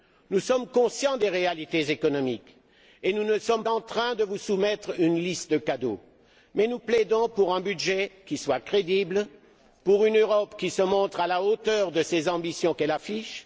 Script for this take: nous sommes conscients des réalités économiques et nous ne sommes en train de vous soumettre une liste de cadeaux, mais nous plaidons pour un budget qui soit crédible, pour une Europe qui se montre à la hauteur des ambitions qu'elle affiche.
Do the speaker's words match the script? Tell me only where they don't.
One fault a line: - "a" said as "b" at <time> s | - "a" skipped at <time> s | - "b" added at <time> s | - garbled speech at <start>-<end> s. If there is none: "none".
none